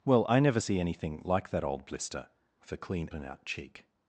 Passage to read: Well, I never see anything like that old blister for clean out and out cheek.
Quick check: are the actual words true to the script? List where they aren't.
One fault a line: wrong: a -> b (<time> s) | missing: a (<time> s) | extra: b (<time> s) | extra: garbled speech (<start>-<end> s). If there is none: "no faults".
missing: out (3.1 s)